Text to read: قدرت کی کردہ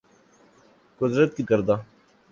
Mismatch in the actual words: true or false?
false